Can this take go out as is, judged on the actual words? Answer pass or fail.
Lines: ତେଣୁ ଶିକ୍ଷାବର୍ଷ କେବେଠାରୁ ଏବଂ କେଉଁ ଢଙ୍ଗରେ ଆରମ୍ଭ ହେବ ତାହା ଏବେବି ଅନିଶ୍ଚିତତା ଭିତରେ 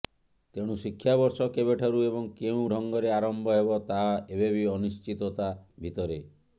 pass